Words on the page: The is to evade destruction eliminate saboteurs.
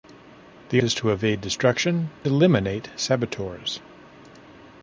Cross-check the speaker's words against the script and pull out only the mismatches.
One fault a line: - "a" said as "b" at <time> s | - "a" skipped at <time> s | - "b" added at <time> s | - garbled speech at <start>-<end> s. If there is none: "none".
none